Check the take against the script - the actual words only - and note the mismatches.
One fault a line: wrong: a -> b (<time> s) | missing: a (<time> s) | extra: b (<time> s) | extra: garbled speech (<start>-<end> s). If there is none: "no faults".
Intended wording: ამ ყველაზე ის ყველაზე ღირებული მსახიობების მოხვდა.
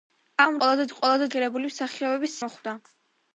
no faults